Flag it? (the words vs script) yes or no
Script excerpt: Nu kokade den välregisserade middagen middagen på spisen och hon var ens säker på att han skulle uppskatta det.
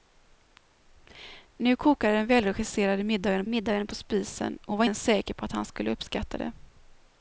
no